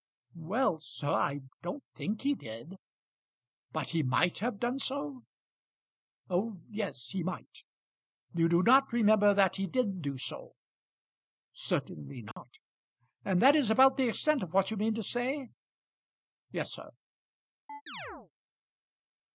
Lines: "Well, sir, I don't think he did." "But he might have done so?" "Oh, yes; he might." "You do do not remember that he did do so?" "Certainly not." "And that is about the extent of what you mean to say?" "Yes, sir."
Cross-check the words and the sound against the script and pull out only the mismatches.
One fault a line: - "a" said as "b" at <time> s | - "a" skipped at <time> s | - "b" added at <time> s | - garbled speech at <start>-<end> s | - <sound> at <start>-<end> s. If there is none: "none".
- "do" skipped at 8.6 s
- dropout at 12.3-12.4 s
- chirp at 17.7-18.3 s